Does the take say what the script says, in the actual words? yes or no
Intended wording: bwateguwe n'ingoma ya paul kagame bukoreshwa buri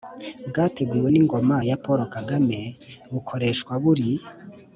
yes